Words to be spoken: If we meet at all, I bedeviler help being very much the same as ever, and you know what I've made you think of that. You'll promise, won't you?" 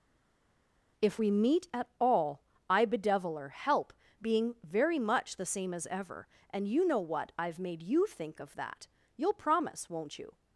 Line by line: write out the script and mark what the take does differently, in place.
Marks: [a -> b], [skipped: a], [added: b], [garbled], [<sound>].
If we meet at all, I bedeviler help being very much the same as ever, and you know what I've made you think of that. You'll promise, won't you?"